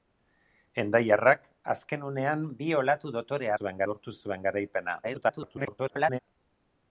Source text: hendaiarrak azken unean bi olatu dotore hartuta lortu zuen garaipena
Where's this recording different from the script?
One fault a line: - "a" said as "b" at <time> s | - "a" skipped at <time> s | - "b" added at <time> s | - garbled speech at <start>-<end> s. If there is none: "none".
- "hartuta" said as "zuen" at 3.6 s
- garbled speech at 5.0-6.2 s